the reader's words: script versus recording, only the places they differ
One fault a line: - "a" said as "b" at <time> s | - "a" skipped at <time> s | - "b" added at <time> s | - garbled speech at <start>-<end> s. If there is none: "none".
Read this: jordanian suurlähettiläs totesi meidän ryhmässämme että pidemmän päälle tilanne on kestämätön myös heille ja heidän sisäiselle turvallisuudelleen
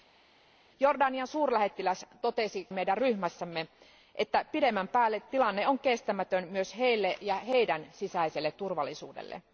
none